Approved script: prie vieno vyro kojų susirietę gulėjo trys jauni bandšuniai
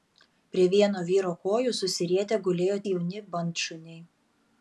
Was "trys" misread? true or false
true